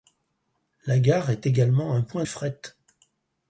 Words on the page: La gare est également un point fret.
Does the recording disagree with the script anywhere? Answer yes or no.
no